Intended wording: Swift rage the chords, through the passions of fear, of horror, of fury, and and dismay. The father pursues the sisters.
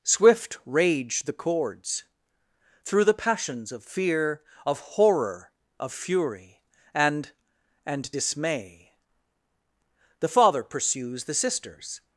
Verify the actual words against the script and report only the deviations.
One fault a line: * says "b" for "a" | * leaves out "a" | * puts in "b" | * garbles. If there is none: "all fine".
all fine